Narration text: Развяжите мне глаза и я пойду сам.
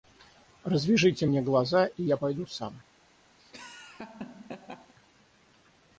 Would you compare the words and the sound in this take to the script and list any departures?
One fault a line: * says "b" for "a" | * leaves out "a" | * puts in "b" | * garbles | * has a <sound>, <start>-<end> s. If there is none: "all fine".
* has a laugh, 3.4-4.9 s